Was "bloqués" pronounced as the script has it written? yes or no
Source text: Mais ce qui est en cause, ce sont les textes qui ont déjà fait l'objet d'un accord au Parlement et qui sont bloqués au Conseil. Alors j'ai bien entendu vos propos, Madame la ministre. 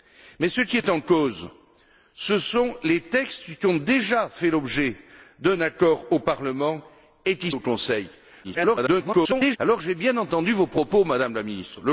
no